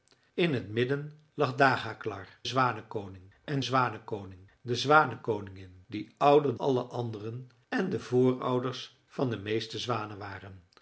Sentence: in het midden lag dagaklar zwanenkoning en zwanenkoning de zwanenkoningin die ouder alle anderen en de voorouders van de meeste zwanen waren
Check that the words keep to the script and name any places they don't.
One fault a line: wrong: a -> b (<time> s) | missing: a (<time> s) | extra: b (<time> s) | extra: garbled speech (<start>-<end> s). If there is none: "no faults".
no faults